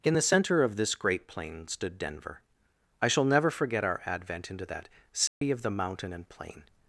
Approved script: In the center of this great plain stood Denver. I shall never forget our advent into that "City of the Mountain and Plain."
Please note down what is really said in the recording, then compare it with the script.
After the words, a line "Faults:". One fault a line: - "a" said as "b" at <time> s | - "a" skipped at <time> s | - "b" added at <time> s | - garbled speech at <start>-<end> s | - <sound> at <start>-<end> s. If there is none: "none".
In the center of this great plain stood Denver. I shall never forget our advent into that "City of the Mountain and Plain."
Faults:
- dropout at 5.3-5.4 s